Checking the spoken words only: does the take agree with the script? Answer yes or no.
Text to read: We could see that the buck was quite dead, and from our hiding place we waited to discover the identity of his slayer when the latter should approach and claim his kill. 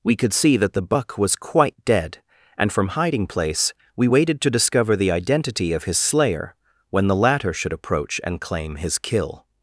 no